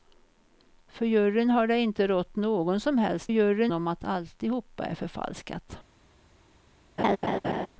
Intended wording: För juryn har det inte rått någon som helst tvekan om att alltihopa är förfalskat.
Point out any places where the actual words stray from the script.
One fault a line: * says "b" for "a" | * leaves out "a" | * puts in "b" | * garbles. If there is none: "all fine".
* says "juryn" for "tvekan"